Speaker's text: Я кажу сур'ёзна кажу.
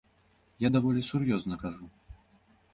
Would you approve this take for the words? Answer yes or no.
no